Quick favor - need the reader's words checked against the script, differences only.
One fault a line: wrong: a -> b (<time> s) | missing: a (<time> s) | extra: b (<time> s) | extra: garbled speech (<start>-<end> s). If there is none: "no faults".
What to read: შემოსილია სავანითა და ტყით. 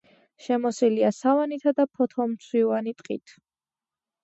extra: ფოთოლმცვივანი (2.0 s)